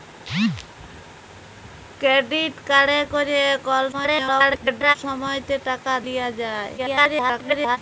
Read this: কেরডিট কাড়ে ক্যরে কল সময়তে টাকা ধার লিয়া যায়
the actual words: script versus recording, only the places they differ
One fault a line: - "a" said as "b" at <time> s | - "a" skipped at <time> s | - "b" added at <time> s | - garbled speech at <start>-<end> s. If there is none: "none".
- garbled speech at 3.9-5.0 s
- "ধার" skipped at 5.9 s
- garbled speech at 6.8-7.8 s